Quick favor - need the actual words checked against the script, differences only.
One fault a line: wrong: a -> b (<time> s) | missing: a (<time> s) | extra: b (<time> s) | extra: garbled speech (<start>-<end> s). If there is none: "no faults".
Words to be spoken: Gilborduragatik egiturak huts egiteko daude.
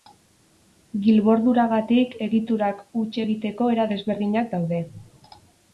extra: era desberdinak (3.8 s)